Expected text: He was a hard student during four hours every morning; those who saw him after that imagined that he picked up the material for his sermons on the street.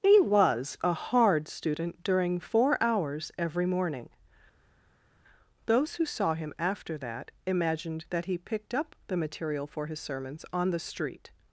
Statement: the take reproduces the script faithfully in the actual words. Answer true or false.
true